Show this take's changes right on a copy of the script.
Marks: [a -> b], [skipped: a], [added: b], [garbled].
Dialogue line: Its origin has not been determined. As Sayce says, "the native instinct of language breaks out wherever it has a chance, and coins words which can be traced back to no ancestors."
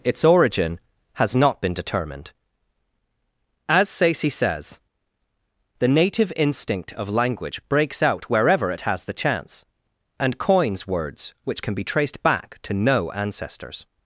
Its origin has not been determined. As Sayce says, "the native instinct of language breaks out wherever it has [a -> the] chance, and coins words which can be traced back to no ancestors."